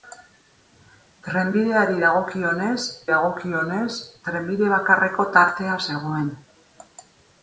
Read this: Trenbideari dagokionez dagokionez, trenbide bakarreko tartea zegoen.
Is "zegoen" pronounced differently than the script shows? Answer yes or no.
no